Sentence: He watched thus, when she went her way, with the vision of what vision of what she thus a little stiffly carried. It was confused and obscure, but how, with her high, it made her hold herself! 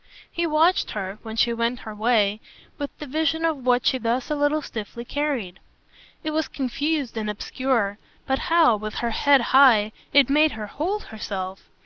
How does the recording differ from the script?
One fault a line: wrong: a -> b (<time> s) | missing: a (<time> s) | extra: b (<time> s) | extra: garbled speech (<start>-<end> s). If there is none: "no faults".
wrong: thus -> her (1.0 s)
missing: vision of what (3.9 s)
extra: head (9.1 s)